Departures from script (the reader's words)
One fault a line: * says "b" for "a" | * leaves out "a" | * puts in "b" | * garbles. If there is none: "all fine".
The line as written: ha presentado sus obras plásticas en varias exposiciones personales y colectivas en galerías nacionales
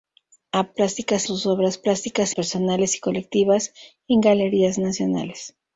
* says "plásticas" for "presentado"
* leaves out "en varias exposiciones"